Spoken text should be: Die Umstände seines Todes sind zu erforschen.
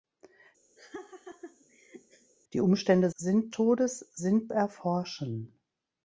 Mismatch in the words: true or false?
true